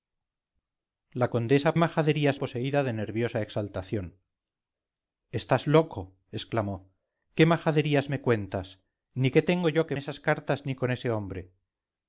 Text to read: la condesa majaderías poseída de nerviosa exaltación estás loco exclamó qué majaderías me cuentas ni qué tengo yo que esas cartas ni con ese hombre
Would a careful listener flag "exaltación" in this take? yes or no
no